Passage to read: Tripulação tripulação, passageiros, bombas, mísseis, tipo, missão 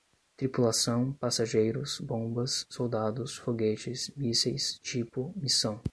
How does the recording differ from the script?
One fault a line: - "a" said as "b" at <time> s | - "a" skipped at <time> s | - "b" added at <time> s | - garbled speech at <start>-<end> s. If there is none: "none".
- "tripulação" skipped at 1.1 s
- "soldados foguetes" added at 2.7 s